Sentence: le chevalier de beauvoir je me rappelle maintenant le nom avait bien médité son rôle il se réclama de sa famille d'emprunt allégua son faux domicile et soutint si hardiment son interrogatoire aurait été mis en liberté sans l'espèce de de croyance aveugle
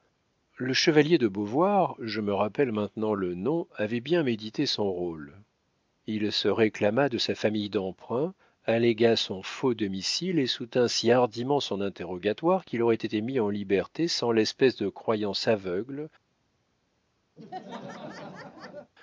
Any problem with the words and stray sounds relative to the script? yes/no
yes